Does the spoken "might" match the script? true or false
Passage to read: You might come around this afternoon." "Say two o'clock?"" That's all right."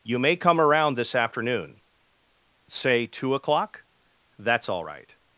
false